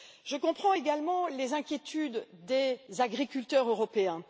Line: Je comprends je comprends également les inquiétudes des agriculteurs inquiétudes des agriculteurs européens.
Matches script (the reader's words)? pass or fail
fail